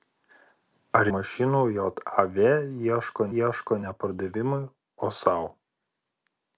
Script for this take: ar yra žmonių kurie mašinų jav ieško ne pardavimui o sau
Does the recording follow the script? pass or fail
fail